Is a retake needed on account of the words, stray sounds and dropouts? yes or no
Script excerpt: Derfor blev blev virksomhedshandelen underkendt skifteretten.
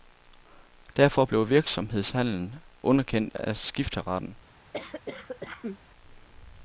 yes